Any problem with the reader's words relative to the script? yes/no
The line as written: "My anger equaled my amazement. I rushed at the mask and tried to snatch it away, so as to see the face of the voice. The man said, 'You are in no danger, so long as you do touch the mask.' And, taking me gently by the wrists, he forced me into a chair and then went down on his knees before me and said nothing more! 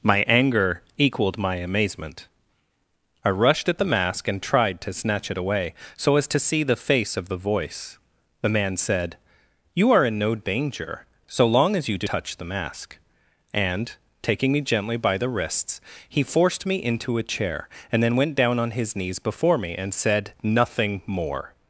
no